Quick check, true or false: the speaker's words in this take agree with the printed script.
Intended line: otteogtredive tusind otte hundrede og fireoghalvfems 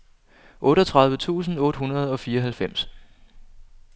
true